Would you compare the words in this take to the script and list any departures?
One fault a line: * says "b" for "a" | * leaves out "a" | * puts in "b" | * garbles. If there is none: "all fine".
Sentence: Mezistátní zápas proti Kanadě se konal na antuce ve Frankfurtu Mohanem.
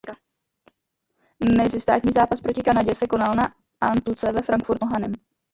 all fine